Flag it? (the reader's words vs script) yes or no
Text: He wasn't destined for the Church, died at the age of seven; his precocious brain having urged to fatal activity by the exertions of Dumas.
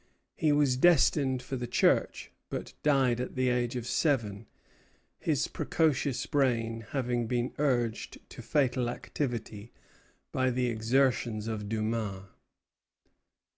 yes